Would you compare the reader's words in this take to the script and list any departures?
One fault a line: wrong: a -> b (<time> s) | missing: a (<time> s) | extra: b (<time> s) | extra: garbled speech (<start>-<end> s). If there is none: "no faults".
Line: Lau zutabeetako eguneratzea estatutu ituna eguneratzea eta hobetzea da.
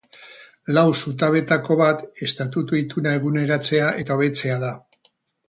wrong: eguneratzea -> bat (1.8 s)